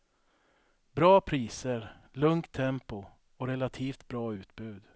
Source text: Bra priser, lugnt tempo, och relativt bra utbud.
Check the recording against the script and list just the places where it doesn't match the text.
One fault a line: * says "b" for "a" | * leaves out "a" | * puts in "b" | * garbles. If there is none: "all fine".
all fine